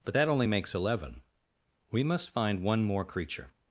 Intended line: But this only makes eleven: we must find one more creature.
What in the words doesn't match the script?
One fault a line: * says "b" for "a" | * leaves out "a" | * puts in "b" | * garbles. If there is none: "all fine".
* says "that" for "this"